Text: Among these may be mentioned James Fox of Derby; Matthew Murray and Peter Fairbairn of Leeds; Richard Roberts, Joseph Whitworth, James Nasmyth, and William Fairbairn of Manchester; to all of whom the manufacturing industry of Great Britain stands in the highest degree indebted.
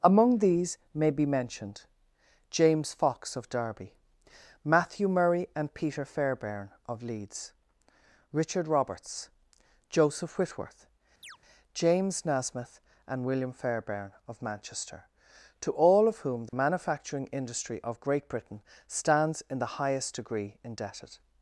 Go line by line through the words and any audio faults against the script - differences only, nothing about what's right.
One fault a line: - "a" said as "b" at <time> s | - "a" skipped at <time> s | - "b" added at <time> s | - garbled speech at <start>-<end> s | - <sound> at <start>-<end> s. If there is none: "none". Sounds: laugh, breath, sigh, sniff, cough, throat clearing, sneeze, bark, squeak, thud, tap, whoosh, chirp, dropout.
- chirp at 11.2-11.4 s
- dropout at 16.5-16.5 s